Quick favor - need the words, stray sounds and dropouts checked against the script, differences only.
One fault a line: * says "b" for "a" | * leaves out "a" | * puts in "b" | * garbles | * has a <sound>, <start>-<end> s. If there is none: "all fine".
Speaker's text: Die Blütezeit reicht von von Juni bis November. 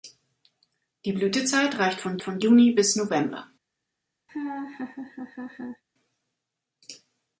* has a laugh, 4.3-5.8 s